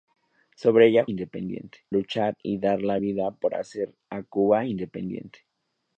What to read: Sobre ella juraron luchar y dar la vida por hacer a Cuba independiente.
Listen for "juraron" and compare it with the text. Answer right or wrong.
wrong